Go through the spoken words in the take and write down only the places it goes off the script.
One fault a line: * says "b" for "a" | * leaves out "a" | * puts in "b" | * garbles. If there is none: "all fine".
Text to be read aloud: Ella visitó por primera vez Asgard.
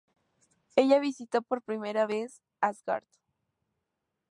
all fine